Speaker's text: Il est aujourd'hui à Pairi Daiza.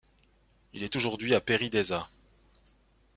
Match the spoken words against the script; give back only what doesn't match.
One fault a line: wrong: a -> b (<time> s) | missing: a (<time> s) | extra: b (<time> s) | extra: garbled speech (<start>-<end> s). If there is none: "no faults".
no faults